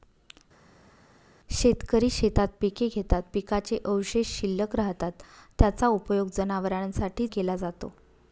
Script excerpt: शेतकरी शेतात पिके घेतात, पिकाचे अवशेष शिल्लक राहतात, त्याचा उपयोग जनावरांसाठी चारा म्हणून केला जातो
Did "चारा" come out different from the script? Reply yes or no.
yes